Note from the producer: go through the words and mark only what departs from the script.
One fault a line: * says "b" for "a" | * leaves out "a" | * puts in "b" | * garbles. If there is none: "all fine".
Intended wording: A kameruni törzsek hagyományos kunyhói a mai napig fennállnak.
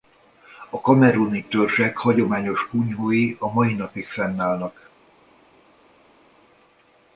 all fine